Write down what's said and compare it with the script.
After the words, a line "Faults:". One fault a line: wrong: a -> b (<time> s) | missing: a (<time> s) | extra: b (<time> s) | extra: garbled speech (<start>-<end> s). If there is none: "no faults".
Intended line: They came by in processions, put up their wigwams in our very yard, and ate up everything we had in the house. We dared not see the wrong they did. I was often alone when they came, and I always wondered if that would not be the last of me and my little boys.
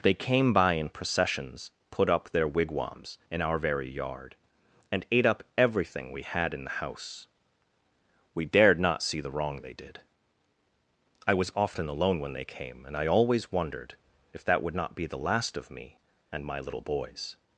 They came by in processions, put up their wigwams in our very yard, and ate up everything we had in the house. We dared not see the wrong they did. I was often alone when they came, and I always wondered if that would not be the last of me and my little boys.
Faults:
no faults